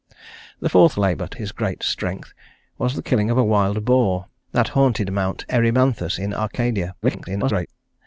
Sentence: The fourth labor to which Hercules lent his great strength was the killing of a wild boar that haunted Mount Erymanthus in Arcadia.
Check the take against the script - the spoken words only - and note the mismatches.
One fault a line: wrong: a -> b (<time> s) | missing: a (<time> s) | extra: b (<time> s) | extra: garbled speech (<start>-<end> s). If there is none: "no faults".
missing: which Hercules lent (1.4 s)
extra: garbled speech (7.0-7.7 s)